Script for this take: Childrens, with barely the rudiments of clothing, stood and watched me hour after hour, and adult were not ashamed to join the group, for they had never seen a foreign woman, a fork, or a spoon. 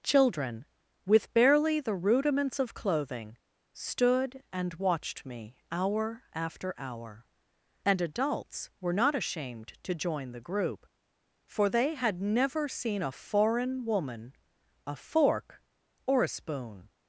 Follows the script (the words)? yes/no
no